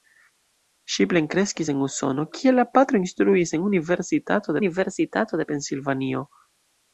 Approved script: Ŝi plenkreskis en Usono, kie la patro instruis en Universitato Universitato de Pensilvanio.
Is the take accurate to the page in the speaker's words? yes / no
yes